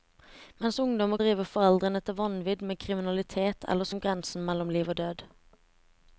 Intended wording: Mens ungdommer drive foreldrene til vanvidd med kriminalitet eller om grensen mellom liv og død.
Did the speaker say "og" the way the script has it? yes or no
yes